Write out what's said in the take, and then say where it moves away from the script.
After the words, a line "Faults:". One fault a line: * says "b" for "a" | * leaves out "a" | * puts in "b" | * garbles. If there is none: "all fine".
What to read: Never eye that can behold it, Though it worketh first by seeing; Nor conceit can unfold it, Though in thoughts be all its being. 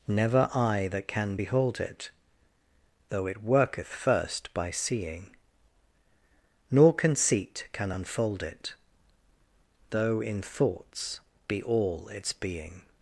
Never eye that can behold it, Though it worketh first by seeing; Nor conceit can unfold it, Though in thoughts be all its being.
Faults:
all fine